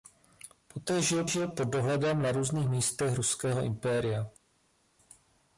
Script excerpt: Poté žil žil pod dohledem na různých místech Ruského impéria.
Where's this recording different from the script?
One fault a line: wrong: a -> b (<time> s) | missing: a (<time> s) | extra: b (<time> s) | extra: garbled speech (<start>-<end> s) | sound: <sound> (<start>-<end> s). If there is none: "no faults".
no faults